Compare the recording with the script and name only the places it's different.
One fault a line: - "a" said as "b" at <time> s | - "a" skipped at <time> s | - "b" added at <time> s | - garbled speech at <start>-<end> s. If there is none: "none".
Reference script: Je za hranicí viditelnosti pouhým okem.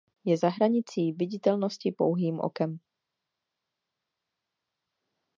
none